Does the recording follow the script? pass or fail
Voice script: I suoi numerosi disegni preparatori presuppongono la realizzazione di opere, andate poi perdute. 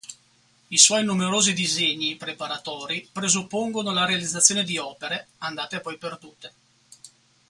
pass